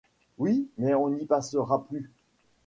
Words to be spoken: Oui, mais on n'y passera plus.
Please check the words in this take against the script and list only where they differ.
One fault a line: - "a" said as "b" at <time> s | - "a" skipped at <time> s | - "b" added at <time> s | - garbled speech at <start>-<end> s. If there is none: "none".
none